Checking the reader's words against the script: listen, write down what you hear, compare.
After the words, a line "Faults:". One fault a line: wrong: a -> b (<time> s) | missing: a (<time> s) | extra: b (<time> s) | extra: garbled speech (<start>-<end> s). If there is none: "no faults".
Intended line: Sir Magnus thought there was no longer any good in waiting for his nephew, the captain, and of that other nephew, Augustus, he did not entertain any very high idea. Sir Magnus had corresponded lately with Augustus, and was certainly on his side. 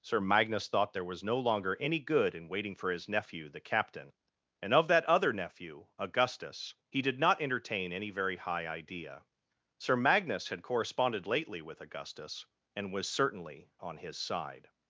Sir Magnus thought there was no longer any good in waiting for his nephew, the captain, and of that other nephew, Augustus, he did not entertain any very high idea. Sir Magnus had corresponded lately with Augustus, and was certainly on his side.
Faults:
no faults